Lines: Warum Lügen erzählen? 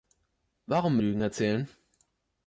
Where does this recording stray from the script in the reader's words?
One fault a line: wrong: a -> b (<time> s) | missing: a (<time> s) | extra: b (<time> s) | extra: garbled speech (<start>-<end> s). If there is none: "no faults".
no faults